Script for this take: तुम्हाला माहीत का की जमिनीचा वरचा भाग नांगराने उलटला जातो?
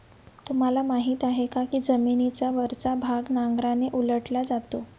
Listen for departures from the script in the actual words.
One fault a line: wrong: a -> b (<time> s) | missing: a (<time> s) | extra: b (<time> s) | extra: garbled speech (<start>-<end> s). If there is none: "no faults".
extra: आहे (1.2 s)